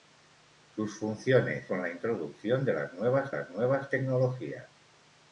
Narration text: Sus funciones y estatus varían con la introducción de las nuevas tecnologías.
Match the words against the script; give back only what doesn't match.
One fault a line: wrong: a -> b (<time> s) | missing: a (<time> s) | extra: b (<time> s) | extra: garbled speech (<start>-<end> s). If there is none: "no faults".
missing: y estatus varían (1.7 s)
extra: las nuevas (3.3 s)